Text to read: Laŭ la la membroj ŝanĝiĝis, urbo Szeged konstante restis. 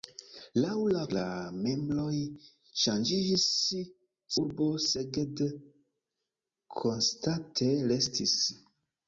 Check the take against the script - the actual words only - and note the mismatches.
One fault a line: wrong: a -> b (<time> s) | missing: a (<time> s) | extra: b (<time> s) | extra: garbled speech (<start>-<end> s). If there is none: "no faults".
no faults